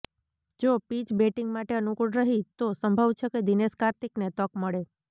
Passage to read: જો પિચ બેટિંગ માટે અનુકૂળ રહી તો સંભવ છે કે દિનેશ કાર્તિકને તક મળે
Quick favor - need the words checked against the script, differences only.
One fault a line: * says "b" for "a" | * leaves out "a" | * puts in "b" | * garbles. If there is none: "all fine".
all fine